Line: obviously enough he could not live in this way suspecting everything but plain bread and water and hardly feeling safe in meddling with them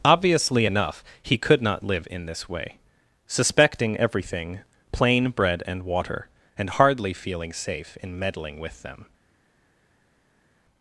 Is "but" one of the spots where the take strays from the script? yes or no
yes